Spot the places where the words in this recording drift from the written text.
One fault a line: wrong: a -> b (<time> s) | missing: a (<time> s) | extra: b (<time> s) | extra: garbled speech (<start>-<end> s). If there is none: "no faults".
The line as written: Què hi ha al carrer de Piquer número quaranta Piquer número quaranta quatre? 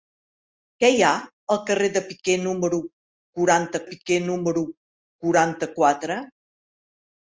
no faults